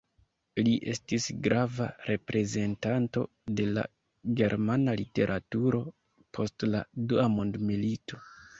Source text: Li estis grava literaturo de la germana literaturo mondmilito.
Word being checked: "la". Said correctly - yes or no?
yes